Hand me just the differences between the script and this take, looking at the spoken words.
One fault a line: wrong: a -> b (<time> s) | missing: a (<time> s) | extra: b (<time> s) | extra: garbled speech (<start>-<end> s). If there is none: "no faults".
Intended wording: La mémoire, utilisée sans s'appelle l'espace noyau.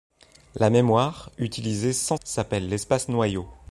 no faults